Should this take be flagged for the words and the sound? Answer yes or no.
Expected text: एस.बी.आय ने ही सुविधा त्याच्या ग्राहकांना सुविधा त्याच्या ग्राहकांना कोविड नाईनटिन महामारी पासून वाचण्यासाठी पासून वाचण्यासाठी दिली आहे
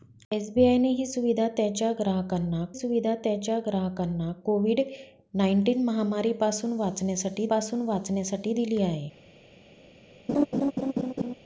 yes